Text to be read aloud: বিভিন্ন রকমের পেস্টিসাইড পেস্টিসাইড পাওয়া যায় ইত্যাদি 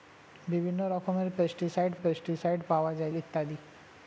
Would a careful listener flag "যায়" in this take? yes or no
no